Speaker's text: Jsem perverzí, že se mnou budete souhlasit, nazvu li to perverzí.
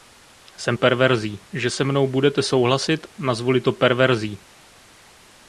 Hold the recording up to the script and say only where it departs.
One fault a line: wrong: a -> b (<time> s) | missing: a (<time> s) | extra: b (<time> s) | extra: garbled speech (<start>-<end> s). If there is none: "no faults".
no faults